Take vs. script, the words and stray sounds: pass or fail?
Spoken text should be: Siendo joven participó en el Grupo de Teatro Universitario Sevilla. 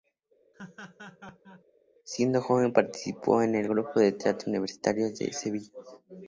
fail